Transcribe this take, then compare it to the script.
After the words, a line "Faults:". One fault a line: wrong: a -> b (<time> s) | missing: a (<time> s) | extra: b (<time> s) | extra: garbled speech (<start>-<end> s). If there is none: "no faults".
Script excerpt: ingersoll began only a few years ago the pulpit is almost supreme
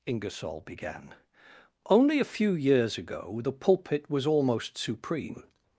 ingersoll began only a few years ago the pulpit was almost supreme
Faults:
wrong: is -> was (4.1 s)